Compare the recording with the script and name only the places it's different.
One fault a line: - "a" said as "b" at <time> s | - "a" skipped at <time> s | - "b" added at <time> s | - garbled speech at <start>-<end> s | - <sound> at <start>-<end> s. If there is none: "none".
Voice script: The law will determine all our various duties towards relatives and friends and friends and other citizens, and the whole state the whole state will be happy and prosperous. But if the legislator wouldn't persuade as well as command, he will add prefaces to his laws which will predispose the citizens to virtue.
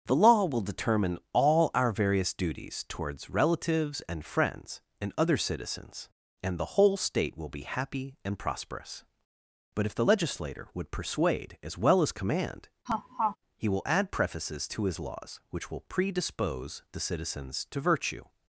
- "friends and" skipped at 5.1 s
- "the whole state" skipped at 7.4 s
- "wouldn't" said as "would" at 10.7 s
- laugh at 12.9-13.4 s